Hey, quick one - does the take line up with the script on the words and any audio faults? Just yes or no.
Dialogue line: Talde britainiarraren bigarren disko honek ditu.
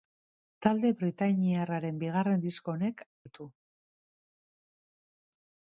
yes